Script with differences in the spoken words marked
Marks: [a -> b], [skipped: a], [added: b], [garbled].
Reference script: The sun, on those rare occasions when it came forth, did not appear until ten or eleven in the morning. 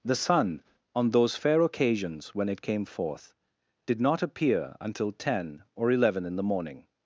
The sun, on those [rare -> fair] occasions when it came forth, did not appear until ten or eleven in the morning.